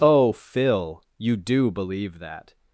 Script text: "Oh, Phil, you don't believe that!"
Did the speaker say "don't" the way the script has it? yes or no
no